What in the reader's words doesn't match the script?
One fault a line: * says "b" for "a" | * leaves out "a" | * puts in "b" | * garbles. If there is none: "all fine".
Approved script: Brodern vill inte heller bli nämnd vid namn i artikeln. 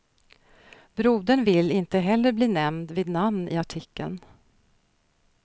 all fine